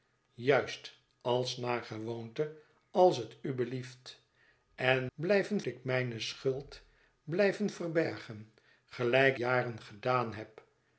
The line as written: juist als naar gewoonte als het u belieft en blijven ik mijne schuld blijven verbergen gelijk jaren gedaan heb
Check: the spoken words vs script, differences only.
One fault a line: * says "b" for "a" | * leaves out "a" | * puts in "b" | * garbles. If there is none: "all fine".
all fine